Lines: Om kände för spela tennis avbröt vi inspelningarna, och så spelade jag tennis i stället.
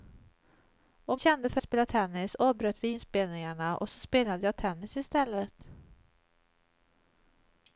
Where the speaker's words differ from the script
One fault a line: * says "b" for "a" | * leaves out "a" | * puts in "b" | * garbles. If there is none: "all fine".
all fine